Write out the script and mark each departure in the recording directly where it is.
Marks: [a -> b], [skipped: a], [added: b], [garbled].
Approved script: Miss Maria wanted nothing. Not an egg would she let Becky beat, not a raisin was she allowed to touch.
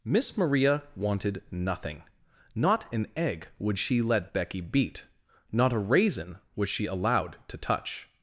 Miss Maria wanted nothing. Not an egg would she let Becky beat, not a raisin was she allowed to touch.